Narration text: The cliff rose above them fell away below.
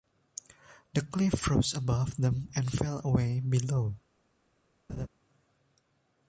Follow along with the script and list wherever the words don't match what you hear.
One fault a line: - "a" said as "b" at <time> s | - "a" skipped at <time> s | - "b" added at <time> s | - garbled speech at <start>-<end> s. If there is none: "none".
- "and" added at 2.5 s